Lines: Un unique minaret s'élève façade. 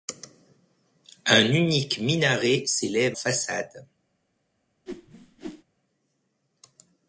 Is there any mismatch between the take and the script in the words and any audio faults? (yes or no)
yes